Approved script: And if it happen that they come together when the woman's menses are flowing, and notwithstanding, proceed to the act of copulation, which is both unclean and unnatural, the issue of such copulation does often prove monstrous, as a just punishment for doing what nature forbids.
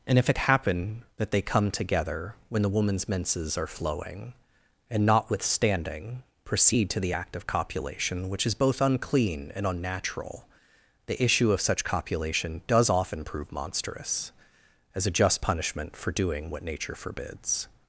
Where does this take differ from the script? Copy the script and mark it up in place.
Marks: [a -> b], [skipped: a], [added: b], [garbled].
And if it happen that they come together when the woman's menses are flowing, and notwithstanding, proceed to the act of copulation, which is both unclean and unnatural, the issue of such copulation does often prove monstrous, as a just punishment for doing what nature forbids.